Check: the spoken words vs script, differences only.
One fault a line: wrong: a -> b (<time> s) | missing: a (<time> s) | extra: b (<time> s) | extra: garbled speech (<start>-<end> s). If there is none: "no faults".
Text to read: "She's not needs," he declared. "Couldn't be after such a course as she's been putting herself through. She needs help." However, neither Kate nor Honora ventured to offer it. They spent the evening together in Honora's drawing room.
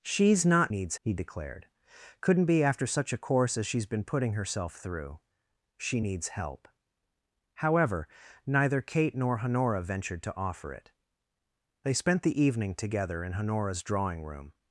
no faults